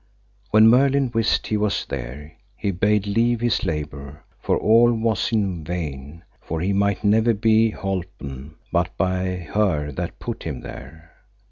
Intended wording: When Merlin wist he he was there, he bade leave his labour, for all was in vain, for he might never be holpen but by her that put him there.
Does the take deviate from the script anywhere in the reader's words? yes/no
yes